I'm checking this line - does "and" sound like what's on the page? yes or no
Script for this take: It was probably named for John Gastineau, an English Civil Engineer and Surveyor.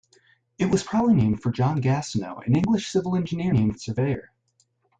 no